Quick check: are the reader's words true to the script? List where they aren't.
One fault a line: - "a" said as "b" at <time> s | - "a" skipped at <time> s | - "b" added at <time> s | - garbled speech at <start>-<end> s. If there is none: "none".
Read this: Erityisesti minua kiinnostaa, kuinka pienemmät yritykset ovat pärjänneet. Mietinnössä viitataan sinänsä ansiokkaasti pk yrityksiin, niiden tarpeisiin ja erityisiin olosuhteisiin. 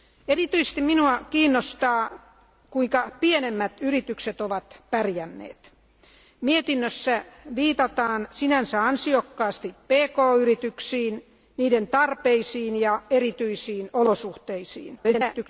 - garbled speech at 14.9-15.5 s